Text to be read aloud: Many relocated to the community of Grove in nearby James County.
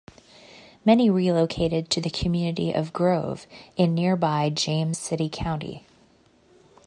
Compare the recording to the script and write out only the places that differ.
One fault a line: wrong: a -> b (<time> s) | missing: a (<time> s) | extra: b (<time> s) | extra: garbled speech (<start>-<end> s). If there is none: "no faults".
extra: City (4.9 s)